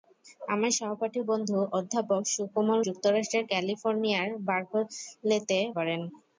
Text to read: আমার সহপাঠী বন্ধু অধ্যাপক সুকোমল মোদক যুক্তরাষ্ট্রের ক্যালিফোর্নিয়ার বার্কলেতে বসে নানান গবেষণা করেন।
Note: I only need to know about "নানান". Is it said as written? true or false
false